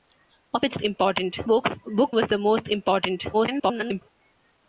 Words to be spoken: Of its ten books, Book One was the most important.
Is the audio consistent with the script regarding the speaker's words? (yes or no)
no